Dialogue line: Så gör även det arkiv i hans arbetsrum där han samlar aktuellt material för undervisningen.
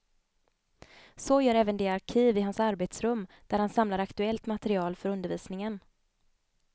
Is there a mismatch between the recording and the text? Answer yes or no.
no